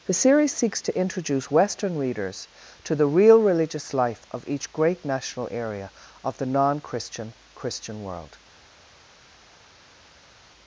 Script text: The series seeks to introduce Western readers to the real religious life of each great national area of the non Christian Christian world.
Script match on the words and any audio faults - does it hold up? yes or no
yes